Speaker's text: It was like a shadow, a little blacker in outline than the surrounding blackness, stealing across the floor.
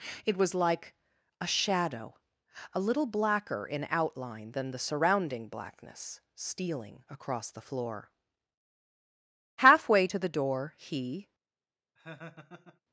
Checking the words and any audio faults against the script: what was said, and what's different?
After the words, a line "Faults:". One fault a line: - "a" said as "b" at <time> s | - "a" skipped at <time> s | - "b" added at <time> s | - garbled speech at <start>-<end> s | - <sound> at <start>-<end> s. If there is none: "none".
It was like a shadow, a little blacker in outline than the surrounding blackness, stealing across the floor. Halfway to the door he
Faults:
- "Halfway to the door he" added at 9.6 s
- laugh at 12.0-12.8 s